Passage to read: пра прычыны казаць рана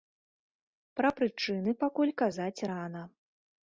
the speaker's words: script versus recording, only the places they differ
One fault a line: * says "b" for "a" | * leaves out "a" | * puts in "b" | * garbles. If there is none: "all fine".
* puts in "пакуль"